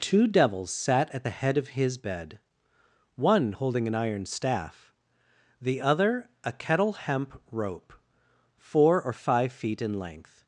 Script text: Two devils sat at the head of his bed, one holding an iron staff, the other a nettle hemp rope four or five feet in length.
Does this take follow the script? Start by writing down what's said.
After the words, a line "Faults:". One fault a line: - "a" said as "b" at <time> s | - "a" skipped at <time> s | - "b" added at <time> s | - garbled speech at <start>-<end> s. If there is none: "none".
Two devils sat at the head of his bed, one holding an iron staff, the other a kettle hemp rope four or five feet in length.
Faults:
- "nettle" said as "kettle" at 6.5 s